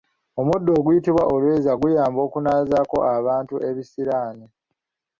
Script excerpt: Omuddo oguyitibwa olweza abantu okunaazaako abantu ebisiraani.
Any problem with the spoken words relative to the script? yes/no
yes